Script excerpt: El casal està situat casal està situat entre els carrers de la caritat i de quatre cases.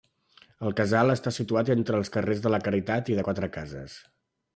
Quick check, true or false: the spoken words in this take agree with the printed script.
false